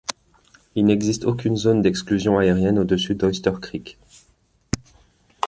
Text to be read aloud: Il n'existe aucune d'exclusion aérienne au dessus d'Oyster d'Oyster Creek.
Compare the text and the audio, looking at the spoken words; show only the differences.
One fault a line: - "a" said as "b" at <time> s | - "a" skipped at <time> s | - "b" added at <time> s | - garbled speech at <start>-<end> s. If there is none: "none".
- "zone" added at 1.6 s
- "d'Oyster" skipped at 3.5 s